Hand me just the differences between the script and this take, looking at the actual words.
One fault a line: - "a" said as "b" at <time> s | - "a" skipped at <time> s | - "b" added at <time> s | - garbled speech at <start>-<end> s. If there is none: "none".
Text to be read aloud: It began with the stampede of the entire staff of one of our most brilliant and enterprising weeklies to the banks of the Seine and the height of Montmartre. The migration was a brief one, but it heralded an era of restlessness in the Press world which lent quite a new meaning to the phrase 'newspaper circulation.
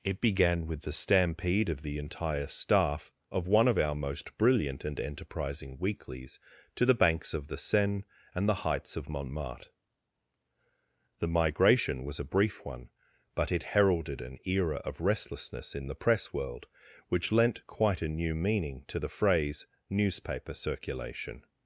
- "height" said as "heights" at 8.7 s